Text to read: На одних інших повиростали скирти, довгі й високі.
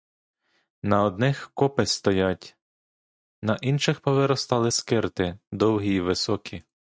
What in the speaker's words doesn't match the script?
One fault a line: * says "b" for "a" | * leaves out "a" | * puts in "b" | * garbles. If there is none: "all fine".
* puts in "копи стоять на"